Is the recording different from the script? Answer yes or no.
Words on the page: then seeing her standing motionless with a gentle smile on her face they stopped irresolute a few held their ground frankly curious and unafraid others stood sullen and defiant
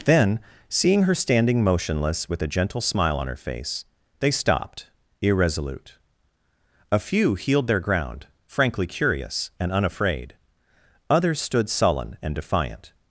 yes